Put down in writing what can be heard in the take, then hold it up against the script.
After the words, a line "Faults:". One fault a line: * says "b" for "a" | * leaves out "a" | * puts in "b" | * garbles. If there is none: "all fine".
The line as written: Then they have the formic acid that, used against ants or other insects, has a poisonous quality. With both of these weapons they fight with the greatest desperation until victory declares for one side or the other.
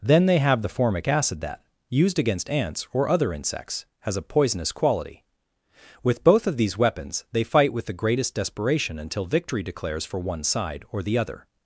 Then they have the formic acid that, used against ants or other insects, has a poisonous quality. With both of these weapons they fight with the greatest desperation until victory declares for one side or the other.
Faults:
all fine